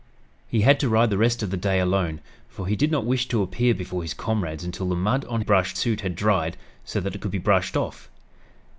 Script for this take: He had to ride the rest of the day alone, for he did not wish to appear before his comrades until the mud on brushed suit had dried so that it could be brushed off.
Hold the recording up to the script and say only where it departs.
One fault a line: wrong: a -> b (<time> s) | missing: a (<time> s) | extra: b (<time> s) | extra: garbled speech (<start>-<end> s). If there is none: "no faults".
no faults